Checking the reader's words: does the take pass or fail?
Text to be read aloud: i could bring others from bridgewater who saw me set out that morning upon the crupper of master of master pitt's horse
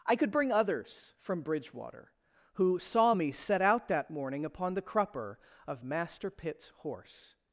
fail